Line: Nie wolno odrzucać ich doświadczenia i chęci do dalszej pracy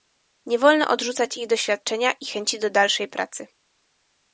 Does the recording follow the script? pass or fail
pass